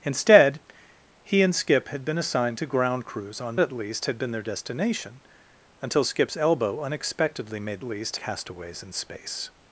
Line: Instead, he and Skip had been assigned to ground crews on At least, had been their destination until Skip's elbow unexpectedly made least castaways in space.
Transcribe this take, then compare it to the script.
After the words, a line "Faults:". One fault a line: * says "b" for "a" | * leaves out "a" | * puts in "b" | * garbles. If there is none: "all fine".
Instead, he and Skip had been assigned to ground crews on At least, had been their destination until Skip's elbow unexpectedly made least castaways in space.
Faults:
all fine